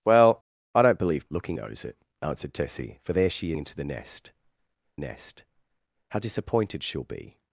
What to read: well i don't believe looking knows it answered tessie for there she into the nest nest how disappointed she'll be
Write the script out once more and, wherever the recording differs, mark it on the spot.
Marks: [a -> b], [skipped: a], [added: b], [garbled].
well i don't believe looking knows it answered tessie for there she into the nest nest how disappointed she'll be